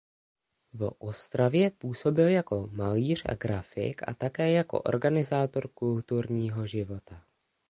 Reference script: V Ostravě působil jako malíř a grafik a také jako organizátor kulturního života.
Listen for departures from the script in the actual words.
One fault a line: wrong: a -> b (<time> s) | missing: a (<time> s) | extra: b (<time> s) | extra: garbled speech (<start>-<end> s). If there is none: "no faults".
no faults